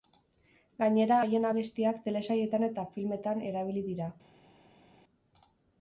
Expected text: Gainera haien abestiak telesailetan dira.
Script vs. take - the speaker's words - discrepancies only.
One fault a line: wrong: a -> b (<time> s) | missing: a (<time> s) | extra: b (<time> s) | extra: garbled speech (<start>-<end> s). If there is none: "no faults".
extra: eta filmetan erabili (2.7 s)